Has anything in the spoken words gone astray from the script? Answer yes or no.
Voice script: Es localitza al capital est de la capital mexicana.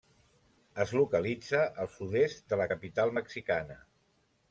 yes